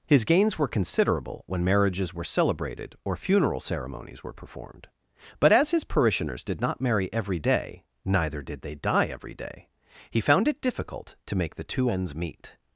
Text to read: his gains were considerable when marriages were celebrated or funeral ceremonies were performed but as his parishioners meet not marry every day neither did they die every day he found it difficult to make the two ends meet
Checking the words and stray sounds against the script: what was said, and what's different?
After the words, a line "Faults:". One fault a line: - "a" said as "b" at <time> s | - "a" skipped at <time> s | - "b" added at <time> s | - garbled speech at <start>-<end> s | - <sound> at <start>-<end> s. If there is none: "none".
his gains were considerable when marriages were celebrated or funeral ceremonies were performed but as his parishioners did not marry every day neither did they die every day he found it difficult to make the two ends meet
Faults:
- "meet" said as "did" at 6.4 s